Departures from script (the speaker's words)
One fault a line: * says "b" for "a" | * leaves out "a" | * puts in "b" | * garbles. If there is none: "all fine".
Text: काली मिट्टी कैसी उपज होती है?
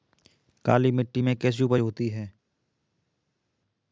* puts in "में"